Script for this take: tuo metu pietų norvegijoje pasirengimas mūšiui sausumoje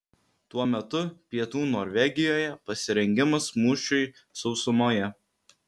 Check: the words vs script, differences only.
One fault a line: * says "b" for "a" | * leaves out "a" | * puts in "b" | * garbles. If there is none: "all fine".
all fine